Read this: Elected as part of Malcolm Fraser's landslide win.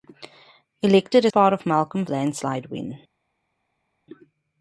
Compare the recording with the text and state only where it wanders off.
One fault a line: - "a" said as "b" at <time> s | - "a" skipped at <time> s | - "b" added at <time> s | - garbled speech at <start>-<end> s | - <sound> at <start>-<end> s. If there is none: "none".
- "as" skipped at 1.3 s
- "Fraser's" skipped at 2.0 s